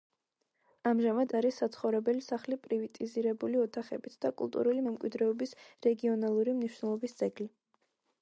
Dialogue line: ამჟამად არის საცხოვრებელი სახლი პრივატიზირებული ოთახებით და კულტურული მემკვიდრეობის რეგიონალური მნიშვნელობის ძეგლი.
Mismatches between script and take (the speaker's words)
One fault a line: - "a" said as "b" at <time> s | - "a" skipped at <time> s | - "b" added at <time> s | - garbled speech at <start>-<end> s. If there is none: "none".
none